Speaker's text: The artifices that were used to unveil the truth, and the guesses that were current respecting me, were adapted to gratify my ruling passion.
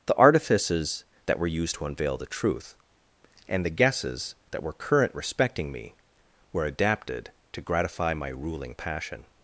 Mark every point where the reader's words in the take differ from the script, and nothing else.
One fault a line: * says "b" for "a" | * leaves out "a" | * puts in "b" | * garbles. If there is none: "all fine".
all fine